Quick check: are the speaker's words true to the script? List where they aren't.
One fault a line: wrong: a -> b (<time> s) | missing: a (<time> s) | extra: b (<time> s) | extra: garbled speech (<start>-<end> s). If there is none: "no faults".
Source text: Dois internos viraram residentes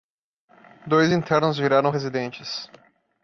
no faults